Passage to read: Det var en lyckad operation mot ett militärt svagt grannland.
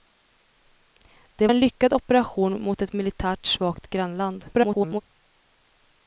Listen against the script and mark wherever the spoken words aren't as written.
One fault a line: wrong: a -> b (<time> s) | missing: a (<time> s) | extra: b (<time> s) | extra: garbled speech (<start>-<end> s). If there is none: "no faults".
missing: var (1.5 s)
extra: garbled speech (4.5-5.0 s)